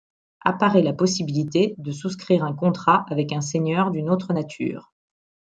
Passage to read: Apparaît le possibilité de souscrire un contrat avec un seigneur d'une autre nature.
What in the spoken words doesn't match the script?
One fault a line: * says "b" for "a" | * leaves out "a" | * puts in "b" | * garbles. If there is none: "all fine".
* says "la" for "le"